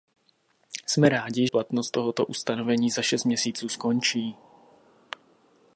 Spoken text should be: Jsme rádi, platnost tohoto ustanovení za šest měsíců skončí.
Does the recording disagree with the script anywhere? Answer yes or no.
no